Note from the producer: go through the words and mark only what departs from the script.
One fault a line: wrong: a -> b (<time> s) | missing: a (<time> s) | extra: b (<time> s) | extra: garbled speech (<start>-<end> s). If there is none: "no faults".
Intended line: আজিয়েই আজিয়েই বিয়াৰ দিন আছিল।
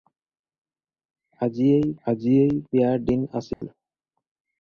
no faults